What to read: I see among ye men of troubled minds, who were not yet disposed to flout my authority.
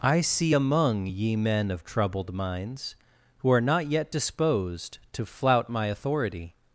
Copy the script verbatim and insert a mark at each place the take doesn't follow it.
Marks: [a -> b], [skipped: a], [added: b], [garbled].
I see among ye men of troubled minds, who [were -> are] not yet disposed to flout my authority.